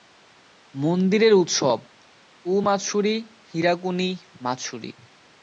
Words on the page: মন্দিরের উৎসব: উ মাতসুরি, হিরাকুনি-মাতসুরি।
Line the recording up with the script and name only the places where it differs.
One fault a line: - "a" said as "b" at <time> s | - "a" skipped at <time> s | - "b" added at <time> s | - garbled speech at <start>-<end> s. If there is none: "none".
none